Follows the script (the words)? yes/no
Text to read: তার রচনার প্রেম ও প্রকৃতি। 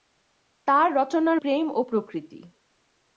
yes